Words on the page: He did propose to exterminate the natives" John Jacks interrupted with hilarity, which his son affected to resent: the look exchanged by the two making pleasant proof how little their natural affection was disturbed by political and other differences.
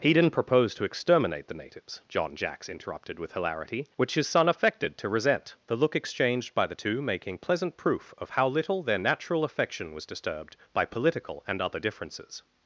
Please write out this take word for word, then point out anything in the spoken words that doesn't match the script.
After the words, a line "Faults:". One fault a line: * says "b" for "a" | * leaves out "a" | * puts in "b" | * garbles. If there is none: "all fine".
He didn't propose to exterminate the natives" John Jacks interrupted with hilarity, which his son affected to resent: the look exchanged by the two making pleasant proof of how little their natural affection was disturbed by political and other differences.
Faults:
* says "didn't" for "did"
* puts in "of"